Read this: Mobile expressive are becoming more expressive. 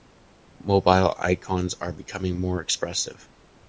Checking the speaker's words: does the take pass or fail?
fail